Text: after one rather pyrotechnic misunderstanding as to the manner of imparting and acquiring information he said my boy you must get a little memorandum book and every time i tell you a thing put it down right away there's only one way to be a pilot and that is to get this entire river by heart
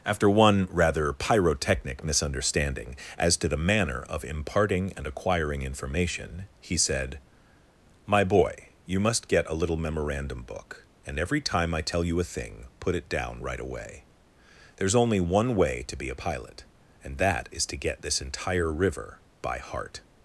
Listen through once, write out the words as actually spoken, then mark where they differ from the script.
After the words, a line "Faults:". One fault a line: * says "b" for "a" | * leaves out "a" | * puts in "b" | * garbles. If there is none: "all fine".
after one rather pyrotechnic misunderstanding as to the manner of imparting and acquiring information he said my boy you must get a little memorandum book and every time i tell you a thing put it down right away there's only one way to be a pilot and that is to get this entire river by heart
Faults:
all fine